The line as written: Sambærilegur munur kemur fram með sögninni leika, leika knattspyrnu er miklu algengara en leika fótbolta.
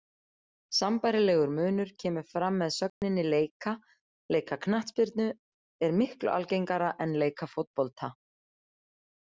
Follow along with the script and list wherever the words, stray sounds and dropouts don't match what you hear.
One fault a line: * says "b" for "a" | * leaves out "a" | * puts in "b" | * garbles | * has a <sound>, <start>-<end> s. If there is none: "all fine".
* has a dropout, 2.9-3.0 s